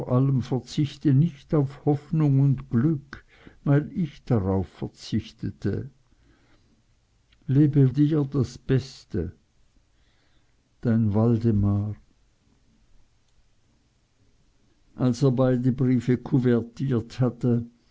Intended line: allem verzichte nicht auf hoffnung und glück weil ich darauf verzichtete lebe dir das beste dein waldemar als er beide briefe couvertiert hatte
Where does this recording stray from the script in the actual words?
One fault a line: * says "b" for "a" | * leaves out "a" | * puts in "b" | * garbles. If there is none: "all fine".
all fine